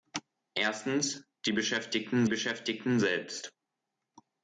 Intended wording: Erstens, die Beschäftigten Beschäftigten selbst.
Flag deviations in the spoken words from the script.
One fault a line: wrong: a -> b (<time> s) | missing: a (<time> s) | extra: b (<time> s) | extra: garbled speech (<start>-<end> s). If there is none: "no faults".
no faults